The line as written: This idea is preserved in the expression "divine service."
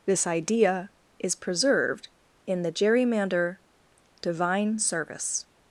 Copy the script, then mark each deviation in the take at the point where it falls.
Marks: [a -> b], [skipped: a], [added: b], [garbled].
This idea is preserved in the [expression -> gerrymander] "divine service."